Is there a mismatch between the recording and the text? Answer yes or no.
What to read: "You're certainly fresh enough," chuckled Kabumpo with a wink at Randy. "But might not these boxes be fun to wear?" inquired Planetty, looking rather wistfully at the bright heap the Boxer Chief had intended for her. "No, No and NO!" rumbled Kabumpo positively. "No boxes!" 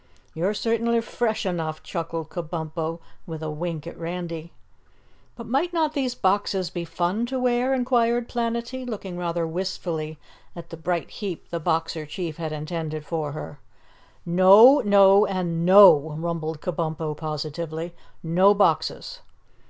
no